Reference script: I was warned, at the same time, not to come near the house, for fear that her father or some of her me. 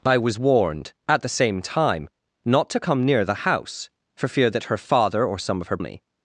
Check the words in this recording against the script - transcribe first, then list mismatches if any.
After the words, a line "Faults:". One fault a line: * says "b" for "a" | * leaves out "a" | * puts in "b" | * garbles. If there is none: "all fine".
I was warned, at the same time, not to come near the house, for fear that her father or some of her me.
Faults:
all fine